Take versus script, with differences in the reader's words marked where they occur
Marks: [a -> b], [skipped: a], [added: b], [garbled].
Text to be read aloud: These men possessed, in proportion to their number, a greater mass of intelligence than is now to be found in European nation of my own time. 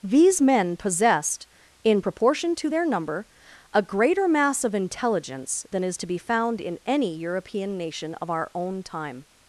These men possessed, in proportion to their number, a greater mass of intelligence than is [skipped: now] to be found in [added: any] European nation of [my -> our] own time.